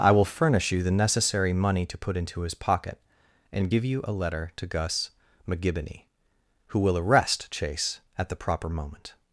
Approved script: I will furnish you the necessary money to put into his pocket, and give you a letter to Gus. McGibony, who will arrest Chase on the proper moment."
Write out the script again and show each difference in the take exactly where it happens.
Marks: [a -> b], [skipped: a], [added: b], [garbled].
I will furnish you the necessary money to put into his pocket, and give you a letter to Gus. McGibony, who will arrest Chase [on -> at] the proper moment."